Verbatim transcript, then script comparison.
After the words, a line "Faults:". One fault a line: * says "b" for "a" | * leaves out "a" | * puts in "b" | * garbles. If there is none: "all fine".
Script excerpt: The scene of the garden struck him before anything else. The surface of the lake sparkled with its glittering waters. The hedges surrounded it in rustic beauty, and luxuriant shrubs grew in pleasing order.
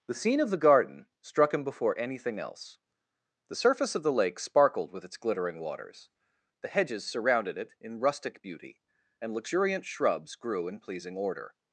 The scene of the garden struck him before anything else. The surface of the lake sparkled with its glittering waters. The hedges surrounded it in rustic beauty, and luxuriant shrubs grew in pleasing order.
Faults:
all fine